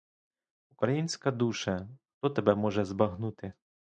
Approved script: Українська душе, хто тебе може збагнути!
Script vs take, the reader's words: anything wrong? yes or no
no